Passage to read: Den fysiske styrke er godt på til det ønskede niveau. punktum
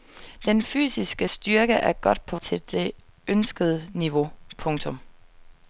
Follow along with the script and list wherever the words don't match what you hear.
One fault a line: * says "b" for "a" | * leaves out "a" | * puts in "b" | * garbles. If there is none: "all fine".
all fine